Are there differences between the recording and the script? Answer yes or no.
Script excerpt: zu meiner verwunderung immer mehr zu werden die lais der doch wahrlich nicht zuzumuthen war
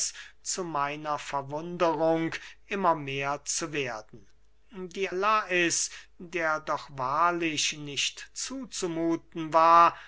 no